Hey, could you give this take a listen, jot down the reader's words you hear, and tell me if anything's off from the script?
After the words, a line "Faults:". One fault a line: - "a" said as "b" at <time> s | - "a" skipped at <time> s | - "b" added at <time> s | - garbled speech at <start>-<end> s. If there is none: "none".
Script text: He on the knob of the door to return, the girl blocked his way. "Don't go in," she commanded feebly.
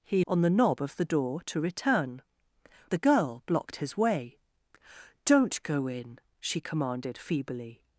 He on the knob of the door to return, the girl blocked his way. "Don't go in," she commanded feebly.
Faults:
none